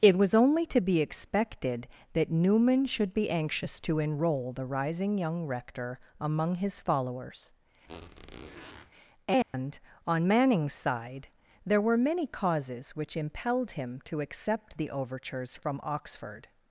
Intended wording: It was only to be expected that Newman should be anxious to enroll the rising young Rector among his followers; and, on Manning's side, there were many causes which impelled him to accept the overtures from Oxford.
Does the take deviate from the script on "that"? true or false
false